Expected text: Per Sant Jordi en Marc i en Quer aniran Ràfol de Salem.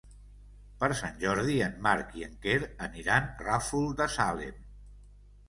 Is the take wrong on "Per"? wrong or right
right